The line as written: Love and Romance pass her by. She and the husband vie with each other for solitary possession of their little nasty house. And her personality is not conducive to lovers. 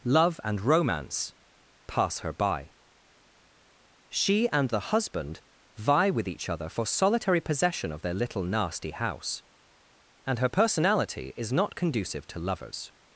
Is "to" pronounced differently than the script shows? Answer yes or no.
no